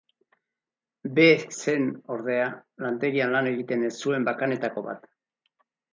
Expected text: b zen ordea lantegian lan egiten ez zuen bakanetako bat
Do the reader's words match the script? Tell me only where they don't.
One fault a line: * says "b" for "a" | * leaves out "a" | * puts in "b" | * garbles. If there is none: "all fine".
all fine